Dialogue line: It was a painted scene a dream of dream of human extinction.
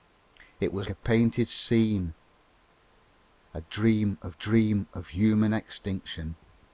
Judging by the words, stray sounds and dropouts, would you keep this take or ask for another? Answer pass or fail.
pass